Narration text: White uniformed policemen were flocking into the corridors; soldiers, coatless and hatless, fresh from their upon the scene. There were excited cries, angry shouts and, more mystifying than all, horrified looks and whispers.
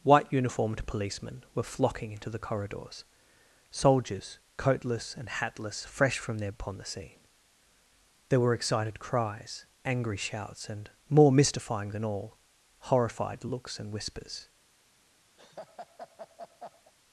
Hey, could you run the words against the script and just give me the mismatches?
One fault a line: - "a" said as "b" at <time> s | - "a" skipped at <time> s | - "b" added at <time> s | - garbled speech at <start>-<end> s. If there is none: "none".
none